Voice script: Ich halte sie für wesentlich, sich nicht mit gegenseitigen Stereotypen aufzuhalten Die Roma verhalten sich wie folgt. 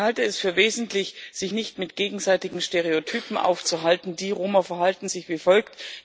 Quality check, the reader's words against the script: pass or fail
fail